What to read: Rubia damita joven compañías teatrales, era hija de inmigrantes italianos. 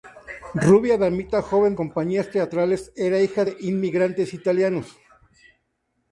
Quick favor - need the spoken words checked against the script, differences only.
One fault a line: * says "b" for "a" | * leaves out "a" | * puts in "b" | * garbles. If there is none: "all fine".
all fine